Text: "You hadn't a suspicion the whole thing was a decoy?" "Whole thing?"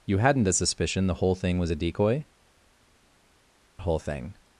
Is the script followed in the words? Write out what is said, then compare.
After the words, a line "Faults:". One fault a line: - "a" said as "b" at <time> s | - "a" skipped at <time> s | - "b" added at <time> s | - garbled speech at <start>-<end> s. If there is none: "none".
"You hadn't a suspicion the whole thing was a decoy?" "Whole thing?"
Faults:
none